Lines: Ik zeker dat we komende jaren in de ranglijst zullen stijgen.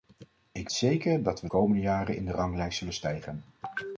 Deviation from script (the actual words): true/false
false